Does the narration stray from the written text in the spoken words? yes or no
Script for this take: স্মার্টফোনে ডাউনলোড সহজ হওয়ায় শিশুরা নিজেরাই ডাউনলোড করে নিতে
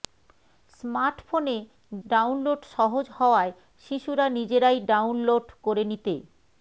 no